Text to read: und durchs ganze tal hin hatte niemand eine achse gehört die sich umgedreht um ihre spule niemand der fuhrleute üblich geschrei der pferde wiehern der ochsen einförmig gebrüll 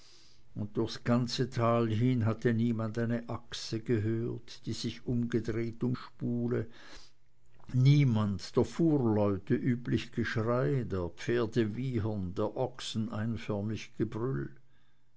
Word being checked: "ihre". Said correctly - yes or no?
no